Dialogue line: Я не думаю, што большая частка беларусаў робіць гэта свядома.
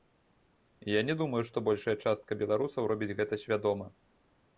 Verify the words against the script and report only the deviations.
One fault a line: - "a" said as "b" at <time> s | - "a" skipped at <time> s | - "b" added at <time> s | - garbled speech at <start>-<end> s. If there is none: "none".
none